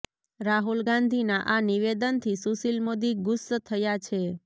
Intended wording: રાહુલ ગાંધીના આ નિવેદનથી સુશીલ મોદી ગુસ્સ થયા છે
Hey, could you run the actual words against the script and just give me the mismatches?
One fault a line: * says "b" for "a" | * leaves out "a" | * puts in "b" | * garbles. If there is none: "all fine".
all fine